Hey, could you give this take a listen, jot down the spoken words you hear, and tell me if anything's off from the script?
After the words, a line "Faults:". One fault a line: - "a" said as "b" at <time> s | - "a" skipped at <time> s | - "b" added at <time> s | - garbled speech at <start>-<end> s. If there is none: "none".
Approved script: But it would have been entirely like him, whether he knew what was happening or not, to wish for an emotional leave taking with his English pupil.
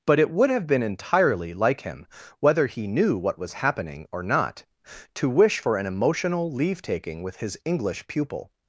But it would have been entirely like him, whether he knew what was happening or not, to wish for an emotional leave taking with his English pupil.
Faults:
none